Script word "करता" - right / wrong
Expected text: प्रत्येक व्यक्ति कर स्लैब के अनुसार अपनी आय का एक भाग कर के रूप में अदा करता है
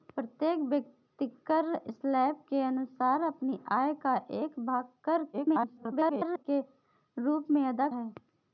wrong